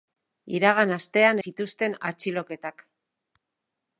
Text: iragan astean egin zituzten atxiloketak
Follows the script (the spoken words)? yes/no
no